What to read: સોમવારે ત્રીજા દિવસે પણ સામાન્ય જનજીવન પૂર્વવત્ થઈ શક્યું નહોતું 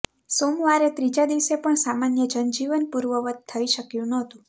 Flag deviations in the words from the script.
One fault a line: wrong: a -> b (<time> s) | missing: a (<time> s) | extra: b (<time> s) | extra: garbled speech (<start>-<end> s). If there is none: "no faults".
no faults